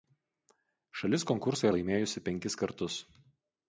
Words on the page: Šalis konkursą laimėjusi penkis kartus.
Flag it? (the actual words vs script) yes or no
no